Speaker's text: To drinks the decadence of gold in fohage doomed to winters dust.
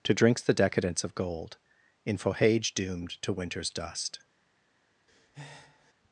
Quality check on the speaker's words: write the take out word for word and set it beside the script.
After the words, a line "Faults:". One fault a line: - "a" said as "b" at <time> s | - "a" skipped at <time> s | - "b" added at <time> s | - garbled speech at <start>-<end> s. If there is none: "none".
To drinks the decadence of gold in fohage doomed to winters dust.
Faults:
none